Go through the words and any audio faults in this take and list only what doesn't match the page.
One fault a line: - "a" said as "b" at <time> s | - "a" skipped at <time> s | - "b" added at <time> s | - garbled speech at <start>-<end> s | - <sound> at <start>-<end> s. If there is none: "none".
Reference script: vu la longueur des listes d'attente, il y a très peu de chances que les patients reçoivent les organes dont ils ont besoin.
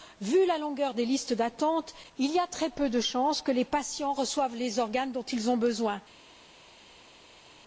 none